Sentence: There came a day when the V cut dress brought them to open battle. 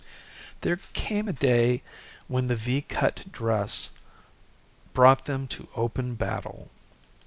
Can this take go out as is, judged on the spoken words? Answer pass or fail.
pass